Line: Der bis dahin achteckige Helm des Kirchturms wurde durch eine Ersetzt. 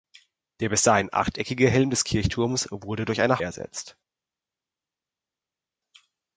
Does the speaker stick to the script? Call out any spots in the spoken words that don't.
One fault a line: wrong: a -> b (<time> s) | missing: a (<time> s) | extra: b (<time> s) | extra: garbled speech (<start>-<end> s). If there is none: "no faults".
no faults